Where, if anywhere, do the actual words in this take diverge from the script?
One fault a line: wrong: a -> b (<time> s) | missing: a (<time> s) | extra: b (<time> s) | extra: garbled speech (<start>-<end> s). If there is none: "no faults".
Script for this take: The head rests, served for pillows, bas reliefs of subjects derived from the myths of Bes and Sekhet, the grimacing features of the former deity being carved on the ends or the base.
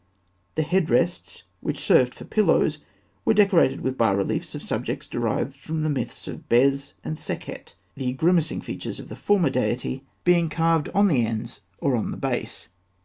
extra: which (1.6 s)
extra: were decorated with (3.2 s)
extra: on (12.0 s)